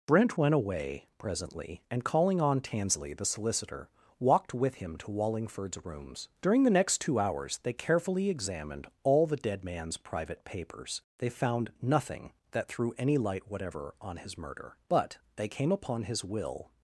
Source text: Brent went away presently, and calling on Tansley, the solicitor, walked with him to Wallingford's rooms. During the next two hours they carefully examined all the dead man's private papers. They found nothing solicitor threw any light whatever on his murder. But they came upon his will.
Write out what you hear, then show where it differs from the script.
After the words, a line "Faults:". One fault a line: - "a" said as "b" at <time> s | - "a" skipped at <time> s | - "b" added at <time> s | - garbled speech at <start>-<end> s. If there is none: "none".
Brent went away presently, and calling on Tansley, the solicitor, walked with him to Wallingford's rooms. During the next two hours they carefully examined all the dead man's private papers. They found nothing that threw any light whatever on his murder. But they came upon his will.
Faults:
- "solicitor" said as "that" at 12.5 s